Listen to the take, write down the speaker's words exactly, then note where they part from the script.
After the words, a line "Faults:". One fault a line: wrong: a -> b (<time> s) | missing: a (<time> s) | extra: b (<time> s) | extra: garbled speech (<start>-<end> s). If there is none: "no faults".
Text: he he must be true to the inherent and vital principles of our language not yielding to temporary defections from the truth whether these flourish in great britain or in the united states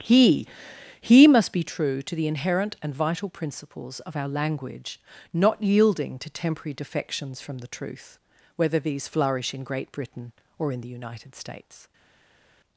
he he must be true to the inherent and vital principles of our language not yielding to temporary defections from the truth whether these flourish in great britain or in the united states
Faults:
no faults